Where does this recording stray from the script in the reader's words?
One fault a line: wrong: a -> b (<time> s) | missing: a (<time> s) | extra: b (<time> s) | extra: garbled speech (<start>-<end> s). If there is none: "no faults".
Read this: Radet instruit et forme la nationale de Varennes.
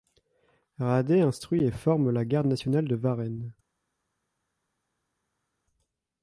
extra: garde (2.2 s)